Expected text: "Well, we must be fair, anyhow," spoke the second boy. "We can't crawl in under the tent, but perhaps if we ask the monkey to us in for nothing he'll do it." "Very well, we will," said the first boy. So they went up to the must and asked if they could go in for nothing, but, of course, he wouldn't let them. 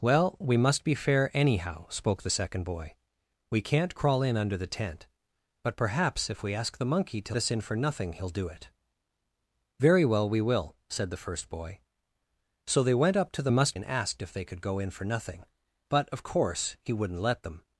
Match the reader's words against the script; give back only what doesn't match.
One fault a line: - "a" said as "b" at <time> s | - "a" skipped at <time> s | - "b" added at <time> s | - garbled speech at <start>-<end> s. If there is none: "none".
none